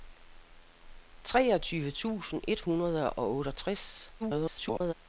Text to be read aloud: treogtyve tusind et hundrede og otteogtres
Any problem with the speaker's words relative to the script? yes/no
yes